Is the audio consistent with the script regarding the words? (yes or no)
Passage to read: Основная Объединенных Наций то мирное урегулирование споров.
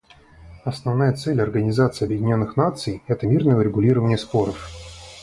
no